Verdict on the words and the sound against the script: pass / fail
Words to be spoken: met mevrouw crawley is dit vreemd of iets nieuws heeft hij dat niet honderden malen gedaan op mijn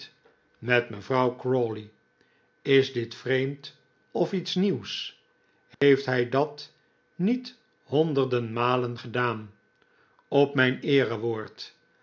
fail